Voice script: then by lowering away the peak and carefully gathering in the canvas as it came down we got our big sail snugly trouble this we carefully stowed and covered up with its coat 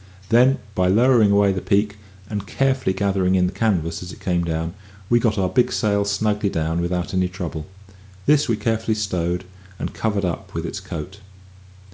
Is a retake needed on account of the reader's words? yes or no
yes